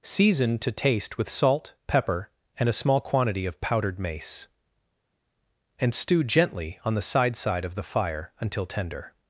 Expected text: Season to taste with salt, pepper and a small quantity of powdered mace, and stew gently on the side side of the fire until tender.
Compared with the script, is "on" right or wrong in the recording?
right